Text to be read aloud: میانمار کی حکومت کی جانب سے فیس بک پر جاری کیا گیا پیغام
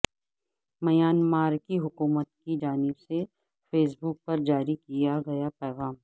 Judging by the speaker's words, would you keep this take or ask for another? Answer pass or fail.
pass